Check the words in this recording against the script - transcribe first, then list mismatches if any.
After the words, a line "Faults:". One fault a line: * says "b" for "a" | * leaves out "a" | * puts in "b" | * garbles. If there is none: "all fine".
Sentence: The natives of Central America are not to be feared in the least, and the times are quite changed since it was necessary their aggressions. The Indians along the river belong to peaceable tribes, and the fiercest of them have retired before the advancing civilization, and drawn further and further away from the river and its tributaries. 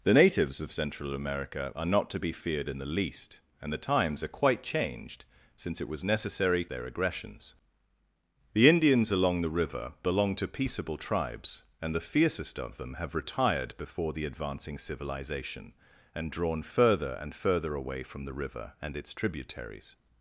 The natives of Central America are not to be feared in the least, and the times are quite changed since it was necessary their aggressions. The Indians along the river belong to peaceable tribes, and the fiercest of them have retired before the advancing civilization, and drawn further and further away from the river and its tributaries.
Faults:
all fine